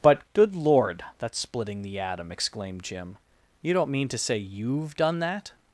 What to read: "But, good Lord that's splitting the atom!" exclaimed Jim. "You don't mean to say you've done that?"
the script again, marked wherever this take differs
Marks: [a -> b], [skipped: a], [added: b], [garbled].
"But, good Lord that's splitting the atom!" exclaimed Jim. "You don't mean to say you've done that?"